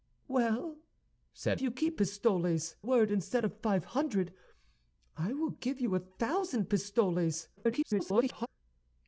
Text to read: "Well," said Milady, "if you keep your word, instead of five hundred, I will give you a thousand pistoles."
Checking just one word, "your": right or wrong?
wrong